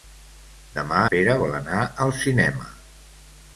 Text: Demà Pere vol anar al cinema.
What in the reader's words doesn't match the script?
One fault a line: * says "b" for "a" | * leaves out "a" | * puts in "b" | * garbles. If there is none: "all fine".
all fine